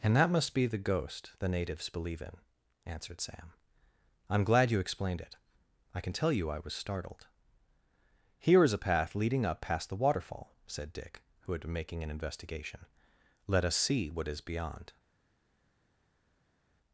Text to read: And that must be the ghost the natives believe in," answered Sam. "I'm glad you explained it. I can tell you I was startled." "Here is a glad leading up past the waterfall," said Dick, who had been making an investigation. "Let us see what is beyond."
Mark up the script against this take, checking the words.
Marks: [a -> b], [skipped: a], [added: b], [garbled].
And that must be the ghost the natives believe in," answered Sam. "I'm glad you explained it. I can tell you I was startled." "Here is a [glad -> path] leading up past the waterfall," said Dick, who had been making an investigation. "Let us see what is beyond."